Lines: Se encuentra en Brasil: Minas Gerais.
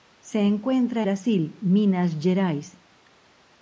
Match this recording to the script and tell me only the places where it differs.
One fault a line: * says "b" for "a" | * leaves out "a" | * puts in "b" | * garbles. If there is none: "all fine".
* leaves out "en"